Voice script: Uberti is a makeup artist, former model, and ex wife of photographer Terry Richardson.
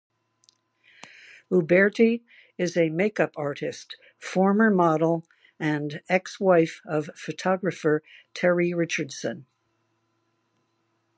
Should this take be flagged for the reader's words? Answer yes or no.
no